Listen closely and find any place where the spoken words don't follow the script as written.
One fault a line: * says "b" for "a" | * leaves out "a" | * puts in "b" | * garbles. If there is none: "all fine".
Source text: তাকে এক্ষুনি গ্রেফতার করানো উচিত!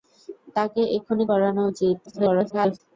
* leaves out "গ্রেফতার"
* garbles